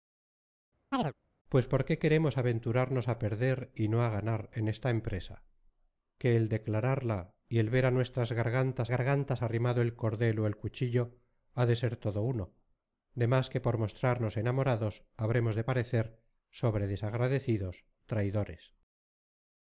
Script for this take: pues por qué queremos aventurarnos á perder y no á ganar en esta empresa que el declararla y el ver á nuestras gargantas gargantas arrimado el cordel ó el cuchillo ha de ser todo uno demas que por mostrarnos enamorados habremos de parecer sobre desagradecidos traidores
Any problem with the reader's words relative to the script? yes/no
no